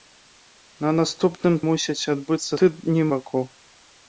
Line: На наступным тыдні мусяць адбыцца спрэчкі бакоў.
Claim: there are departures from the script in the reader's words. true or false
true